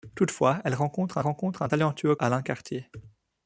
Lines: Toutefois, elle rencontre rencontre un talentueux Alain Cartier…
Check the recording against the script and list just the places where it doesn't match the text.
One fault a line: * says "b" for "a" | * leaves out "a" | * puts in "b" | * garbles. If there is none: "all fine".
all fine